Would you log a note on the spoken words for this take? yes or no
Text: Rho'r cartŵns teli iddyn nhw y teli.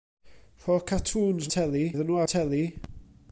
no